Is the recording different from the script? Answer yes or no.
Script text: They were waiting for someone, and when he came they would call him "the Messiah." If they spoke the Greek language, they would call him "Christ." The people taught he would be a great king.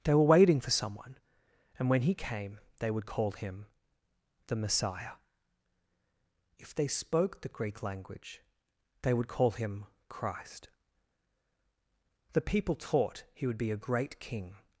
no